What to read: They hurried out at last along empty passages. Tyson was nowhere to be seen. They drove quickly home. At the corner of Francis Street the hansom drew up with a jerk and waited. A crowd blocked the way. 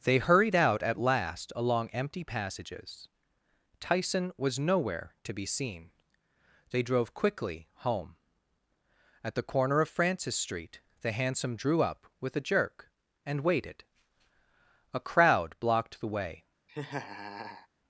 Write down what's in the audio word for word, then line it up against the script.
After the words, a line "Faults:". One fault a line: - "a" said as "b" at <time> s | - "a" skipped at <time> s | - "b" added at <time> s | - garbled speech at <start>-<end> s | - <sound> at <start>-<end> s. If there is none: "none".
They hurried out at last along empty passages. Tyson was nowhere to be seen. They drove quickly home. At the corner of Francis Street the hansom drew up with a jerk and waited. A crowd blocked the way.
Faults:
- laugh at 16.7-17.7 s